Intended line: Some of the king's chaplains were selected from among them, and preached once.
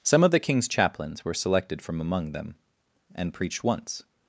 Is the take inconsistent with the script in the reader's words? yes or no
no